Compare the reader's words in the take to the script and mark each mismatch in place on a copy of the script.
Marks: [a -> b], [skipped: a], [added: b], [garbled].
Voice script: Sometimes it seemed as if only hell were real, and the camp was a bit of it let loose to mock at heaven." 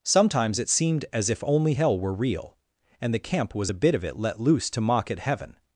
Sometimes it seemed as if only hell were real, and the camp was a bit of it let loose to mock at heaven."